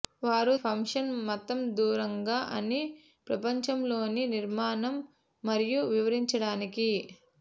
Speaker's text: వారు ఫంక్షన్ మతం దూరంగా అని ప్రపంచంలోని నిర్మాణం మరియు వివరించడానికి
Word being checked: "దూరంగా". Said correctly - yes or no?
yes